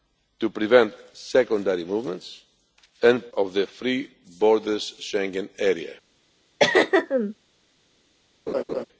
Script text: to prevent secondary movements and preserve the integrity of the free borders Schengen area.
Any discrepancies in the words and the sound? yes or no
yes